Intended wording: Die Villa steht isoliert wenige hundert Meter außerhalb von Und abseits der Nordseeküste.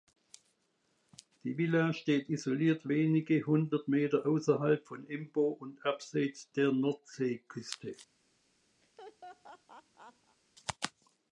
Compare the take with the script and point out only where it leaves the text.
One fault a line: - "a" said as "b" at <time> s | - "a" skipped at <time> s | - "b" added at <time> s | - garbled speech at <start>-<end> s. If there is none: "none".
- "Embo" added at 5.1 s